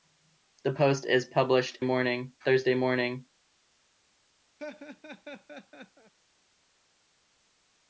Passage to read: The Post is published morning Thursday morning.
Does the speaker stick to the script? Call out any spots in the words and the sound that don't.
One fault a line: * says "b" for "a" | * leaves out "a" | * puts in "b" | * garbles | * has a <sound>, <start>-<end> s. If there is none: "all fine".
* has a laugh, 4.6-6.1 s